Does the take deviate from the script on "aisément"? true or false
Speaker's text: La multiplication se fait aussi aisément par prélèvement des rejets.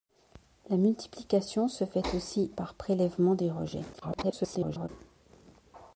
true